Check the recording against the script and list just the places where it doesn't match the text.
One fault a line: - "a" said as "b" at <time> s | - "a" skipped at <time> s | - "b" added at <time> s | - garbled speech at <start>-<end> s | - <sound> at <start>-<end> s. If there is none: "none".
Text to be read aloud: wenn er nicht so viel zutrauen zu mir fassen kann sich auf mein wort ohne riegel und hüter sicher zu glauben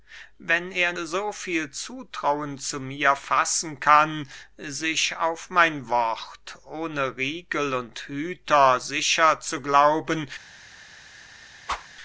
- "nicht" skipped at 0.9 s
- whoosh at 11.7-11.9 s